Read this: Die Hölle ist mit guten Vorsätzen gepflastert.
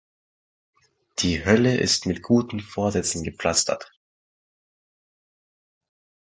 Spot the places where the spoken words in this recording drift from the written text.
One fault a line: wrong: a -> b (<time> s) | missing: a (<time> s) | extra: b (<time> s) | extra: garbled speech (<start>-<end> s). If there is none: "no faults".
no faults